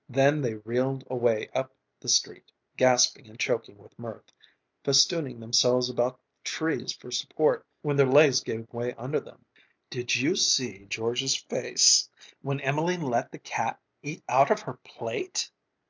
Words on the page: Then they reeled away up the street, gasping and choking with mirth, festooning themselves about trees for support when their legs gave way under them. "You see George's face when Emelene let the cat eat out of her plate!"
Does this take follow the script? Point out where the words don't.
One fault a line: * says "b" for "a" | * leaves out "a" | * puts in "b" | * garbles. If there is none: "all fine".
* puts in "Did"